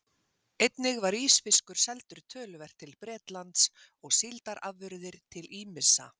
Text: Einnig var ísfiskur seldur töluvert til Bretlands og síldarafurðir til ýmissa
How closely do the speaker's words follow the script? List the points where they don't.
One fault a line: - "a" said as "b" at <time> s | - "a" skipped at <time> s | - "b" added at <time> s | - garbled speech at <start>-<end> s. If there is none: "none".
none